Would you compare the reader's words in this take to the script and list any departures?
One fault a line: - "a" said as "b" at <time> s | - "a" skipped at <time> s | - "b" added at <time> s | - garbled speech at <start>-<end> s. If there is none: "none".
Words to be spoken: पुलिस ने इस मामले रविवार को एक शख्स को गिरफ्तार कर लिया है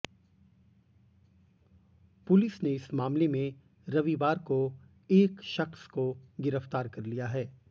- "में" added at 3.3 s